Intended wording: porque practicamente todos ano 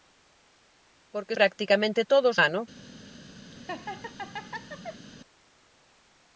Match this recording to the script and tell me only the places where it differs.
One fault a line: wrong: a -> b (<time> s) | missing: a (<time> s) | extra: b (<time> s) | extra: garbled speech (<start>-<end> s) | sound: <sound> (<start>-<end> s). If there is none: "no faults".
sound: laugh (3.5-5.1 s)